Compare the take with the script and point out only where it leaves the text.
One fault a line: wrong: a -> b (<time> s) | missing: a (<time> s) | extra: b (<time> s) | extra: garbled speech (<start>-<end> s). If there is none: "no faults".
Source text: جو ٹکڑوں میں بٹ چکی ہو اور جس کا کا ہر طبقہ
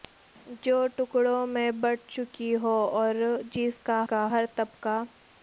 no faults